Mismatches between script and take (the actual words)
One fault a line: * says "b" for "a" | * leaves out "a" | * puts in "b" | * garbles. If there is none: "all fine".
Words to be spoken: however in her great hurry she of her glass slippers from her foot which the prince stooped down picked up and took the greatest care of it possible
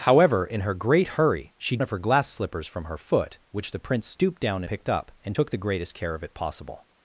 all fine